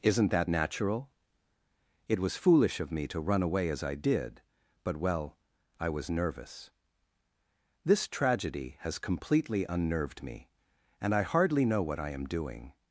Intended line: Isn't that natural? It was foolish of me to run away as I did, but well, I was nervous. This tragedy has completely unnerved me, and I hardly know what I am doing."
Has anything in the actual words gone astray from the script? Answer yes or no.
no